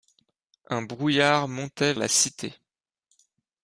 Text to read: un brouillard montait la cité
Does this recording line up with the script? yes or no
yes